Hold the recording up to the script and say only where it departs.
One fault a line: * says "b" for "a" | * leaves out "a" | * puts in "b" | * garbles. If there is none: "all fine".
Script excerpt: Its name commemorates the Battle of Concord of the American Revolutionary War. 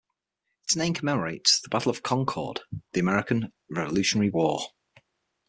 all fine